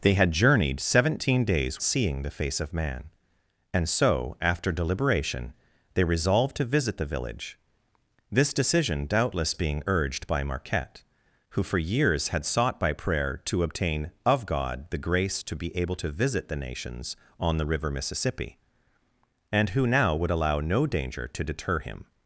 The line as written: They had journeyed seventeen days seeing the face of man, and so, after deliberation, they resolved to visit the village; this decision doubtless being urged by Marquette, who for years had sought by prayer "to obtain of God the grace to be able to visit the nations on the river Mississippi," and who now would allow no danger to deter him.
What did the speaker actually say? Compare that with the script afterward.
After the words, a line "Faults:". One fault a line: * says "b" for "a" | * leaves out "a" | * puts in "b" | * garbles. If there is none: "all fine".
They had journeyed seventeen days seeing the face of man, and so, after deliberation, they resolved to visit the village; this decision doubtless being urged by Marquette, who for years had sought by prayer "to obtain of God the grace to be able to visit the nations on the river Mississippi," and who now would allow no danger to deter him.
Faults:
all fine